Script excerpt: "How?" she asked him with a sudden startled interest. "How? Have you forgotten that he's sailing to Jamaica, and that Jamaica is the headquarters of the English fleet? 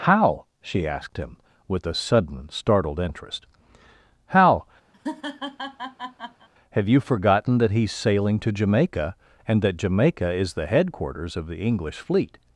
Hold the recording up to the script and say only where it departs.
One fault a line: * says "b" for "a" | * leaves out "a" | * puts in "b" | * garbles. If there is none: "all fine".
all fine